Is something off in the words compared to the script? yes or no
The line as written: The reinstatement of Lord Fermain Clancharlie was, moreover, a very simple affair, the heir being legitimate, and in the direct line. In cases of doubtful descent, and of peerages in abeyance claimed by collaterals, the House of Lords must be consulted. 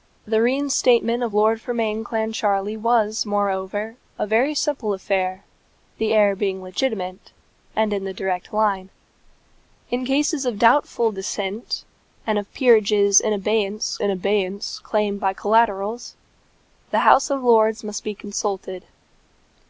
yes